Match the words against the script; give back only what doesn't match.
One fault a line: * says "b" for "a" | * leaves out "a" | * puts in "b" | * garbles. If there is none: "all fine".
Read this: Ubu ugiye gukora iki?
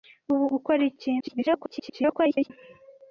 * leaves out "ugiye"
* garbles